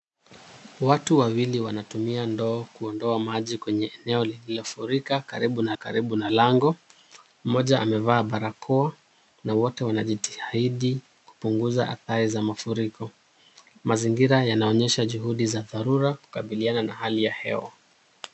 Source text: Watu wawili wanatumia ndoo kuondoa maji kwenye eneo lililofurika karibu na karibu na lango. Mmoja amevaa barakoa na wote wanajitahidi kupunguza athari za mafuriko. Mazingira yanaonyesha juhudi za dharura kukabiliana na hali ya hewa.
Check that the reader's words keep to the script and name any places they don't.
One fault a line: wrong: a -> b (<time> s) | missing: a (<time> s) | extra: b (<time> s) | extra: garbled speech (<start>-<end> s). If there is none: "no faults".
no faults